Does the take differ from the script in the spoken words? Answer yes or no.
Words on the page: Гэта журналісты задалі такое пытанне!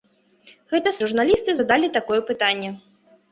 no